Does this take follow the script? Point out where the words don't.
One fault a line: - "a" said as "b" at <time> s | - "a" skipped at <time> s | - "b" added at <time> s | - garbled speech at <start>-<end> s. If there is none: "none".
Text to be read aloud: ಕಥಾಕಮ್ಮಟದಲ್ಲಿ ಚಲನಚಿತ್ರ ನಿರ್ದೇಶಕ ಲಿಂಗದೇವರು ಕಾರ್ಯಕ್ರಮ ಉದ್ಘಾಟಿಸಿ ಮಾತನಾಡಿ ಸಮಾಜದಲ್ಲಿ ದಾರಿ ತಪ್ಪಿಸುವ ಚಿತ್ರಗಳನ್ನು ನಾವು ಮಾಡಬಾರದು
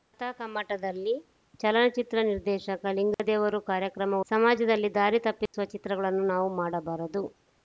- "ಉದ್ಘಾಟಿಸಿ ಮಾತನಾಡಿ" skipped at 4.2 s